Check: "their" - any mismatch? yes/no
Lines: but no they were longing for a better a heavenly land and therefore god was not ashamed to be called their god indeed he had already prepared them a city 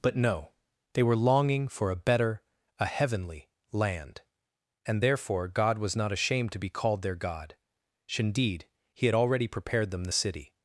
no